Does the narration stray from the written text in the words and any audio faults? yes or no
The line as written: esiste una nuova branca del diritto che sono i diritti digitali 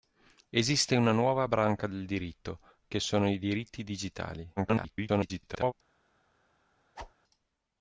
yes